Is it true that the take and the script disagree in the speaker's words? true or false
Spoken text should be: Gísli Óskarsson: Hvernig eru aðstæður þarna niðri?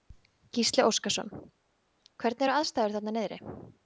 false